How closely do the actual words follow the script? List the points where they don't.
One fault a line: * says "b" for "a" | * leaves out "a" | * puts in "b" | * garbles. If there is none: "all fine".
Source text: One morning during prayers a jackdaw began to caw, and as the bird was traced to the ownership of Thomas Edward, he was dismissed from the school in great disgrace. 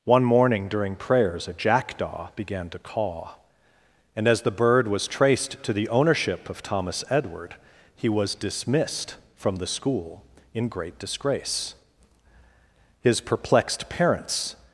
* puts in "His perplexed parents"